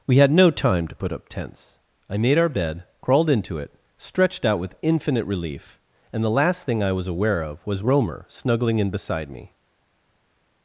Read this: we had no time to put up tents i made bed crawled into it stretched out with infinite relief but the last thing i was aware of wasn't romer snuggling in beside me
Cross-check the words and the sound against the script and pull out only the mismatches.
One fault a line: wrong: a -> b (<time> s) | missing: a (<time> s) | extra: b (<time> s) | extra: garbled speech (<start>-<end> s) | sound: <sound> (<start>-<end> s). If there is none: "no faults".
extra: our (2.4 s)
wrong: but -> and (6.1 s)
wrong: wasn't -> was (7.7 s)